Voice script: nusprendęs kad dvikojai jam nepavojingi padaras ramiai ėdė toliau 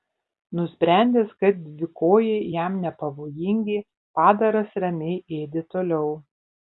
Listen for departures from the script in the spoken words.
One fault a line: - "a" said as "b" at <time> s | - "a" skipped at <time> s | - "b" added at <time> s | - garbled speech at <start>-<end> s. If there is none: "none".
none